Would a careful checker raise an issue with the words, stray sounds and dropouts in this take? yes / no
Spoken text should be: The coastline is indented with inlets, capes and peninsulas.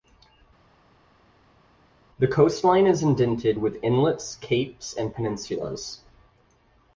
no